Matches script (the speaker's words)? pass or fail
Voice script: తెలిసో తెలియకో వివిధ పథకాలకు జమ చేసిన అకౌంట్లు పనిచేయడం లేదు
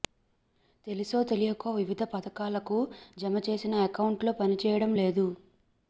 pass